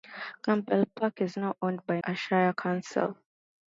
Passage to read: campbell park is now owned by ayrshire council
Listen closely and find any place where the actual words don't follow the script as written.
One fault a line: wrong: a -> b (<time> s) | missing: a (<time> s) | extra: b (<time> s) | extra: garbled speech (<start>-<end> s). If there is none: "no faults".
no faults